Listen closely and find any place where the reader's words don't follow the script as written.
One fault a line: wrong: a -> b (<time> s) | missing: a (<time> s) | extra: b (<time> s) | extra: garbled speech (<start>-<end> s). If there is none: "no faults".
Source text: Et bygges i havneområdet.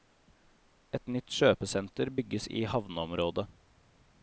extra: nytt kjøpesenter (1.1 s)